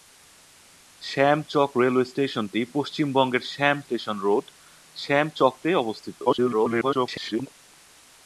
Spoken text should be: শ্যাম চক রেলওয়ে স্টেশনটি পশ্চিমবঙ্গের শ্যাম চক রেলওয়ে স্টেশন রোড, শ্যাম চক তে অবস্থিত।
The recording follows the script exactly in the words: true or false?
false